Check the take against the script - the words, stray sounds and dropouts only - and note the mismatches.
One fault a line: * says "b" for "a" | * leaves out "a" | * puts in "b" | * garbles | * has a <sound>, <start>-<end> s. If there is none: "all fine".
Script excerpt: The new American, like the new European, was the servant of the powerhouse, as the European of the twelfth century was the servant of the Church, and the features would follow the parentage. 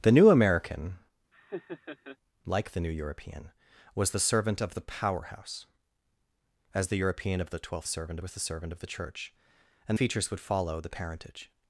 * has a laugh, 1.3-2.2 s
* says "servant" for "century"
* leaves out "the"